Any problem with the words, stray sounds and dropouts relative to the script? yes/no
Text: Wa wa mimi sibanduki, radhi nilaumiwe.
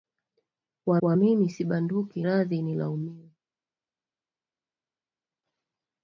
no